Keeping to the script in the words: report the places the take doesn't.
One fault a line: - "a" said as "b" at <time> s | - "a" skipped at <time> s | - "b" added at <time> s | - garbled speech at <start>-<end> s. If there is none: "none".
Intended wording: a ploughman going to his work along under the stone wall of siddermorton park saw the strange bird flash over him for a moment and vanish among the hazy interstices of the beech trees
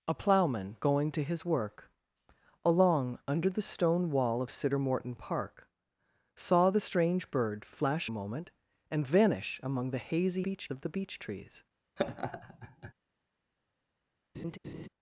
- "over him for" skipped at 8.1 s
- "interstices" said as "beech" at 10.4 s